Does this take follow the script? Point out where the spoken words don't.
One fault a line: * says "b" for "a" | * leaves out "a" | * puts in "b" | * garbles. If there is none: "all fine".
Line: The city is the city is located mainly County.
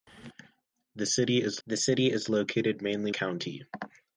all fine